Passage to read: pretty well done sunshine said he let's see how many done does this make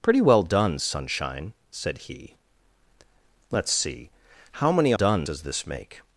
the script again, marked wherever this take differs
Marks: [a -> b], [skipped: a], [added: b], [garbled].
pretty well done sunshine said he let's see how many done does this make